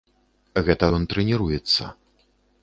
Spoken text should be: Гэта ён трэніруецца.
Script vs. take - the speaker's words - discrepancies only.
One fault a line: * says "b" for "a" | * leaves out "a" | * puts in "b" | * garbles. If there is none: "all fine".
all fine